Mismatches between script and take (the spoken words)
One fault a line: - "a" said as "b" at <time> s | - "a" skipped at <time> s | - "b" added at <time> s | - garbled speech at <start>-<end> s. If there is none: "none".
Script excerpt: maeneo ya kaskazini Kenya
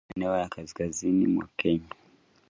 - "mwa" added at 1.3 s